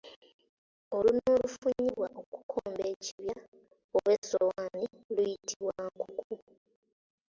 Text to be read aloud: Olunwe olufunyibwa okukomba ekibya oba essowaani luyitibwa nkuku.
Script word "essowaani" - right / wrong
right